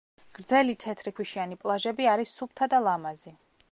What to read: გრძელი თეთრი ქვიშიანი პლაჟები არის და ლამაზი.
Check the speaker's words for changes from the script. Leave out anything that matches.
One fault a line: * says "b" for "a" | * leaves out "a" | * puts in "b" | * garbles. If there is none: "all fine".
* puts in "სუფთა"